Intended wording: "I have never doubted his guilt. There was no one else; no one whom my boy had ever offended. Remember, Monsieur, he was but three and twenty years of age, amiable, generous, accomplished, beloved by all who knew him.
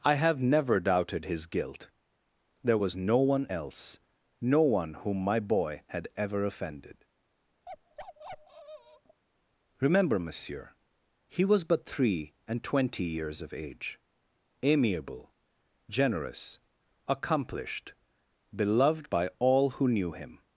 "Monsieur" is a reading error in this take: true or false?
false